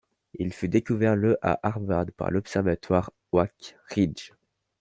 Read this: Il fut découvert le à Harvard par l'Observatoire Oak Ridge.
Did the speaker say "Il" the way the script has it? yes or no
yes